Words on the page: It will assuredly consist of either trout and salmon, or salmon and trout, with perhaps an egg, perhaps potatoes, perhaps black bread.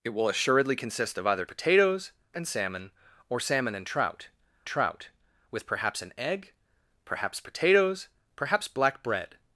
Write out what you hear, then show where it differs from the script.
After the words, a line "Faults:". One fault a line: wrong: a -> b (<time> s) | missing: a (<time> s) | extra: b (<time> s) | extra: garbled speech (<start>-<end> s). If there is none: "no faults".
It will assuredly consist of either potatoes and salmon, or salmon and trout trout, with perhaps an egg, perhaps potatoes, perhaps black bread.
Faults:
wrong: trout -> potatoes (1.4 s)
extra: trout (4.7 s)